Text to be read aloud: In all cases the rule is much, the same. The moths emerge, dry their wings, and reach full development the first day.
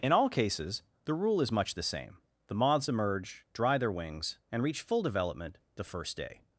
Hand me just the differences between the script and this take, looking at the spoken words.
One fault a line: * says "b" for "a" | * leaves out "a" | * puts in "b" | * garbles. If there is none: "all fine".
all fine